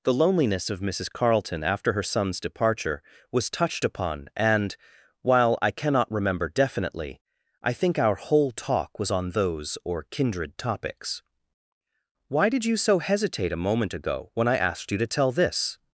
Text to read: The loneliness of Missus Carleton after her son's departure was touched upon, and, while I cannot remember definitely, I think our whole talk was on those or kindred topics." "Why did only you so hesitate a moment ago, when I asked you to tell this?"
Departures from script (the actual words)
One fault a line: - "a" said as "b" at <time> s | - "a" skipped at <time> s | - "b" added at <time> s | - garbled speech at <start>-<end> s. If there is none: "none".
- "only" skipped at 12.6 s